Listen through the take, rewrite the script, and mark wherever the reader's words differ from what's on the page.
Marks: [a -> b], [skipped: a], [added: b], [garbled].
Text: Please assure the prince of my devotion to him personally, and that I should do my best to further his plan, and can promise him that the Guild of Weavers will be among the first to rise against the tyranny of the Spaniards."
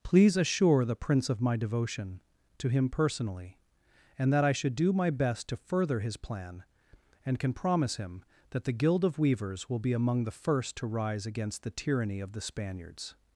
Please assure the prince of my devotion to him personally, and that I should do my best to further his plan, and can promise him that the Guild of Weavers will be among the first to rise against the tyranny of the Spaniards."